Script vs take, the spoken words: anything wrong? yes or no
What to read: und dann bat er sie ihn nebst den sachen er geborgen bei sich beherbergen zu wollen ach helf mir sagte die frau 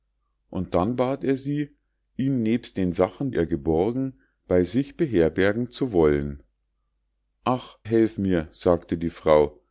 no